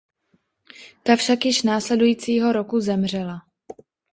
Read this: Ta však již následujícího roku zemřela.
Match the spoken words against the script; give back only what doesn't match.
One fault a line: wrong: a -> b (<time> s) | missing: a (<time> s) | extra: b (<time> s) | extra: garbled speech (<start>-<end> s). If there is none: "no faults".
no faults